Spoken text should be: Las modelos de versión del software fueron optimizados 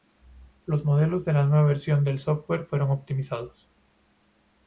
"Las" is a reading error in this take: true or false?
true